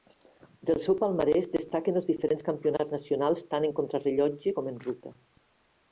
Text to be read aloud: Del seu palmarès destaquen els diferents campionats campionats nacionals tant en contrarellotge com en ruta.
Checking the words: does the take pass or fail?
fail